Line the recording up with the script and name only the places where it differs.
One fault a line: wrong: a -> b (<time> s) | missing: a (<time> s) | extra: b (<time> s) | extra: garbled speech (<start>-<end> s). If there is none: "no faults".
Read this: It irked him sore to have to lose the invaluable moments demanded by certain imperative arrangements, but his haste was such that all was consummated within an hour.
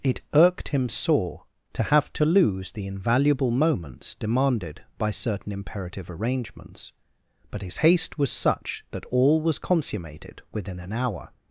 no faults